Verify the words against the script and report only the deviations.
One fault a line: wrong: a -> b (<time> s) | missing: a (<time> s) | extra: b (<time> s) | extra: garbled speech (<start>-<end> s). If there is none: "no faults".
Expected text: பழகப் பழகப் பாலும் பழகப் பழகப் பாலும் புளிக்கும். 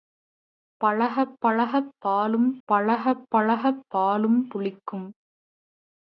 no faults